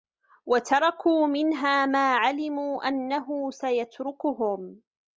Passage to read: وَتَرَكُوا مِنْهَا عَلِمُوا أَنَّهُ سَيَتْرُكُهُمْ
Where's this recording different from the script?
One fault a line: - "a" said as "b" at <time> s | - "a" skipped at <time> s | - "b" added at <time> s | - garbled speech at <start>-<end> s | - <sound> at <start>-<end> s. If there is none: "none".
- "مَا" added at 1.9 s